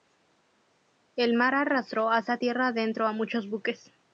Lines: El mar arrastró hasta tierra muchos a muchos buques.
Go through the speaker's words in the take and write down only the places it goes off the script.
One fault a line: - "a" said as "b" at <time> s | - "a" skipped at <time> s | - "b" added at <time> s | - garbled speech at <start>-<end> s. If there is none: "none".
- "muchos" said as "adentro" at 2.7 s